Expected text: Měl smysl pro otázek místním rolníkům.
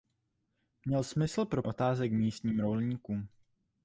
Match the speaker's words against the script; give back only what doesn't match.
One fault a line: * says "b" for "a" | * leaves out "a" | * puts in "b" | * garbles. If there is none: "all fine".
all fine